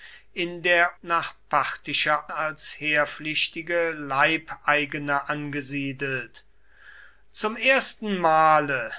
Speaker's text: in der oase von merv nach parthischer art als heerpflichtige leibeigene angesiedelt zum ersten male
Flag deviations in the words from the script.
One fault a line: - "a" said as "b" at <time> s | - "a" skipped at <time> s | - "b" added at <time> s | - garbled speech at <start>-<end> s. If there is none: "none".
- "oase von merv" skipped at 1.0 s
- "art" skipped at 2.3 s